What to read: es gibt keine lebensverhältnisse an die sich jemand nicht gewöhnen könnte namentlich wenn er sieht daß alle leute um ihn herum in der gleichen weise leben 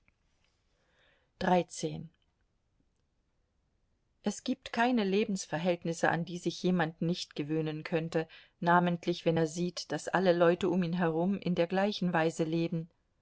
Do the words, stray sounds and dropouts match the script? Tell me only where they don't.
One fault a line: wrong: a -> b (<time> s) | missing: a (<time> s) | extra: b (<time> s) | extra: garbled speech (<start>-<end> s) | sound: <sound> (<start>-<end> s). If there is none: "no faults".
no faults